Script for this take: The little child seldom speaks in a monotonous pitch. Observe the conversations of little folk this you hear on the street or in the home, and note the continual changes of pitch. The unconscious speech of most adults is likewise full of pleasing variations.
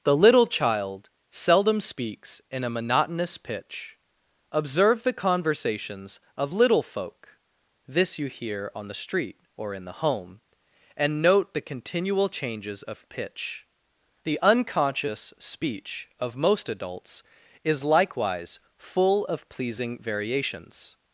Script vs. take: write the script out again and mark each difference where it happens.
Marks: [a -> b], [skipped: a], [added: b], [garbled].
The little child seldom speaks in a monotonous pitch. Observe the conversations of little folk this you hear on the street or in the home, and note the continual changes of pitch. The unconscious speech of most adults is likewise full of pleasing variations.